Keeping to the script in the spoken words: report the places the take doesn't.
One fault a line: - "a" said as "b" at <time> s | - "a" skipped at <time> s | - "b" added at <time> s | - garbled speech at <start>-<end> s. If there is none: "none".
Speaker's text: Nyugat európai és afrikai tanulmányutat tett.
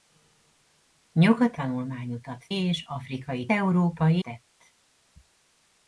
- "európai" said as "tanulmányutat" at 1.5 s
- "tanulmányutat" said as "európai" at 3.5 s